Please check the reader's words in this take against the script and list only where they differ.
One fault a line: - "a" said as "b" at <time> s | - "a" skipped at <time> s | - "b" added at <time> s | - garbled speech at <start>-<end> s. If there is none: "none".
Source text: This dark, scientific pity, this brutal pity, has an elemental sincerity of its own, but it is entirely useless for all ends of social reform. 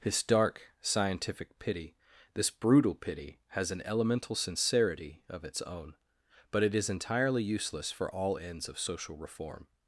none